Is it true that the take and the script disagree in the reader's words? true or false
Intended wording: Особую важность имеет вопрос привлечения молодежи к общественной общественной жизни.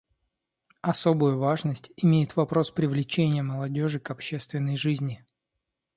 true